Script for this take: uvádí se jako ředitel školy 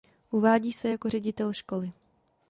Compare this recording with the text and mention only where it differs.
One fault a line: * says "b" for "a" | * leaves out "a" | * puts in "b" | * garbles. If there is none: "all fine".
all fine